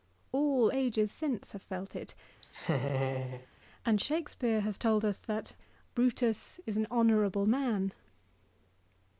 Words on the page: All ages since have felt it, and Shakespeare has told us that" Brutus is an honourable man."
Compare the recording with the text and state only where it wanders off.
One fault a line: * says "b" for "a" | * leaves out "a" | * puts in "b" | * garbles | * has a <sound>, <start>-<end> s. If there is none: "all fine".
* has a laugh, 2.4-3.5 s